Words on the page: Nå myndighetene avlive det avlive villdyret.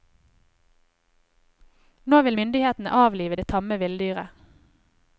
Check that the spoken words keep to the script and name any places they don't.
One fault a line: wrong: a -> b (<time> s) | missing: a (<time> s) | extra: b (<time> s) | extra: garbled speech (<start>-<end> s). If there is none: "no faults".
extra: vil (2.2 s)
wrong: avlive -> tamme (3.5 s)